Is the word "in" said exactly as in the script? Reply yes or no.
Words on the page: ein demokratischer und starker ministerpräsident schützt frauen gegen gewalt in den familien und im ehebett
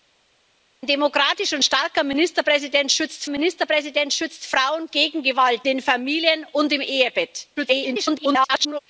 no